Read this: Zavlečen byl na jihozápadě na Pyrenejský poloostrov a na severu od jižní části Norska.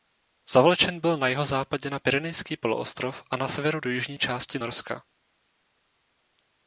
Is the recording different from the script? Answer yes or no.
yes